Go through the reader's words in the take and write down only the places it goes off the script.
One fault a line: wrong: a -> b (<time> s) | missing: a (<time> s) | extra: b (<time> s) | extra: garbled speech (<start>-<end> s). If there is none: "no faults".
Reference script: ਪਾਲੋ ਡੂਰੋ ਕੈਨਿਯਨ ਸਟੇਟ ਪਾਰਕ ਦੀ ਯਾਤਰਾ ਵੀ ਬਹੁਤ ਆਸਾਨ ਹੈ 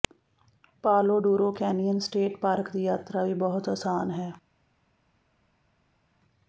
no faults